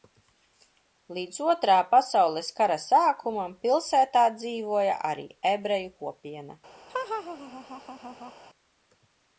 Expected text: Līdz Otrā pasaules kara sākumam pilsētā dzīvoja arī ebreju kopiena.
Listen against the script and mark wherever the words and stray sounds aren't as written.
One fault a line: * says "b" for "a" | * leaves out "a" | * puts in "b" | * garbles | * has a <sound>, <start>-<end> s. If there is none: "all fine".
* has a laugh, 6.9-8.3 s